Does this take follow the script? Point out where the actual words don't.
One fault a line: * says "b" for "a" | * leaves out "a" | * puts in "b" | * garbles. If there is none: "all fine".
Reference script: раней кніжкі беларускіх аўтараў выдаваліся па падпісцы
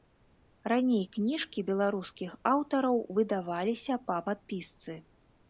all fine